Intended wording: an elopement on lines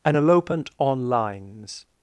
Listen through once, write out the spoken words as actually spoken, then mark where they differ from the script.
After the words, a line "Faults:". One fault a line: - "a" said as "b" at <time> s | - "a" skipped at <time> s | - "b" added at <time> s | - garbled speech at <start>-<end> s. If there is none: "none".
an elopement on lines
Faults:
none